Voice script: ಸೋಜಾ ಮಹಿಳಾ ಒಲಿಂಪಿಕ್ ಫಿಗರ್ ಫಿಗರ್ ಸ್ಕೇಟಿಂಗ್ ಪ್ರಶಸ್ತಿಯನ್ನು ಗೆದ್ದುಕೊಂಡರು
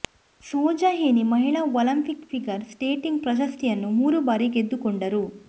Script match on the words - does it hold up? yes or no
no